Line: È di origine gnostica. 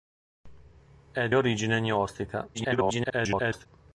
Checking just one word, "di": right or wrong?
wrong